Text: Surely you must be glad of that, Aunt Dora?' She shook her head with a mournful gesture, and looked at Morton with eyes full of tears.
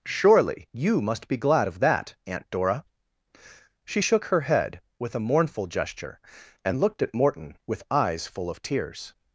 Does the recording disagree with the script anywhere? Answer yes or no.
no